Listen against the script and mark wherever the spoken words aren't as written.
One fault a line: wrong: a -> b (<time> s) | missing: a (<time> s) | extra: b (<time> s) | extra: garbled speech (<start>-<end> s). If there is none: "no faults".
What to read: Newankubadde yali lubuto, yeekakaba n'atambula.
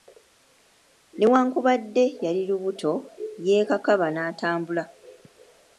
no faults